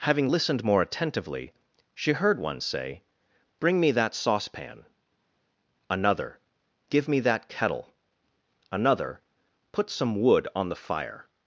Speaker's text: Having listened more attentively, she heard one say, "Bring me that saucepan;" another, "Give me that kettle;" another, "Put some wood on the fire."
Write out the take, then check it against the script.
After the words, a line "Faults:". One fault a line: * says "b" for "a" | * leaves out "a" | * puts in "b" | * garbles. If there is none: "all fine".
Having listened more attentively, she heard one say, "Bring me that saucepan;" another, "Give me that kettle;" another, "Put some wood on the fire."
Faults:
all fine